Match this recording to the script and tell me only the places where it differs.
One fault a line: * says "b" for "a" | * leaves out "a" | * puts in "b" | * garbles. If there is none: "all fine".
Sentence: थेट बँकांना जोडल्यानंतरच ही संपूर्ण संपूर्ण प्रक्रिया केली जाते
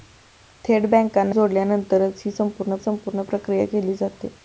all fine